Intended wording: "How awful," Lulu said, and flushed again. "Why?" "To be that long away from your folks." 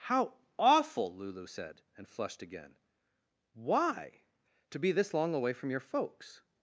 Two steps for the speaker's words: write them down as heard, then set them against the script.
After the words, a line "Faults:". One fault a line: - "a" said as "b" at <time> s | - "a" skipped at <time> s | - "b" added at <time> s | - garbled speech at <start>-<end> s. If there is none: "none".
"How awful," Lulu said, and flushed again. "Why?" "To be this long away from your folks."
Faults:
- "that" said as "this" at 4.9 s